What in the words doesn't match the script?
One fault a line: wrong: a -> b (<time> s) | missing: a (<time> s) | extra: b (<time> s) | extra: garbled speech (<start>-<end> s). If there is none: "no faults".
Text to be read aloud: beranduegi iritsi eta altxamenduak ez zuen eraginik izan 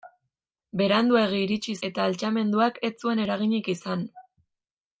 no faults